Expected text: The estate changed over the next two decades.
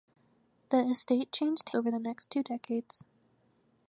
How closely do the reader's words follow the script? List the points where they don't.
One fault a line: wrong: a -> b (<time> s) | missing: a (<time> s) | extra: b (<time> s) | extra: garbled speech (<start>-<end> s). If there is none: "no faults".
no faults